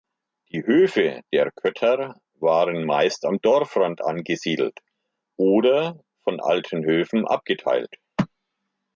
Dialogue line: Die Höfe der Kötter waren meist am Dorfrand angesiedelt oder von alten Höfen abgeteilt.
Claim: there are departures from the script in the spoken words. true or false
false